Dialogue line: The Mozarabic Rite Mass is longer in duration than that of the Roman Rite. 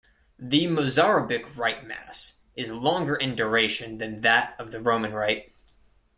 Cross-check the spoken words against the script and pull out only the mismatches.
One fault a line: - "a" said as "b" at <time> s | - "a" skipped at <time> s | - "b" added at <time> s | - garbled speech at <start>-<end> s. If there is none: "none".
none